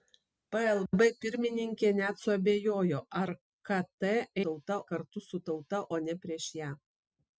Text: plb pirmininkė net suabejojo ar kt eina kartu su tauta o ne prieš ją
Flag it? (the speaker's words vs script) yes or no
yes